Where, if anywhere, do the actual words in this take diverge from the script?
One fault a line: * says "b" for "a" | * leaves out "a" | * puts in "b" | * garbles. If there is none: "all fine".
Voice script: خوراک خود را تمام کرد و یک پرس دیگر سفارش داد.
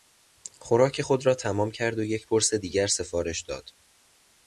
all fine